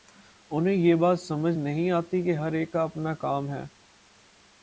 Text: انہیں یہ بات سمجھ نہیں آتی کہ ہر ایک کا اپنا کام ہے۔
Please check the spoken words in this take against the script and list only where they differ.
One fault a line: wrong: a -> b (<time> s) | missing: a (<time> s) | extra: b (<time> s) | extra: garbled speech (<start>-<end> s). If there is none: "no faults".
no faults